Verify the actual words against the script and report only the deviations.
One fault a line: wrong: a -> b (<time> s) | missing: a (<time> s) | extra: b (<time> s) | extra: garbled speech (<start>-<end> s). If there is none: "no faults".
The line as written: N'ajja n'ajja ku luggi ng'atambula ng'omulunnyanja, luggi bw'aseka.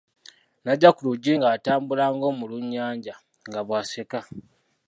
missing: n'ajja (0.9 s)
wrong: luggi -> nga (3.5 s)